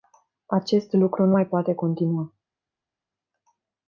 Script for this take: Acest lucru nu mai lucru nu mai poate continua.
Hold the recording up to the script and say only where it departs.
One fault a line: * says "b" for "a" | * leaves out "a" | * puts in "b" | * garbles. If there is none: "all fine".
* leaves out "lucru nu mai"